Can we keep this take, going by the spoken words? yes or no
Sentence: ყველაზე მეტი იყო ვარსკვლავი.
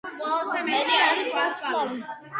no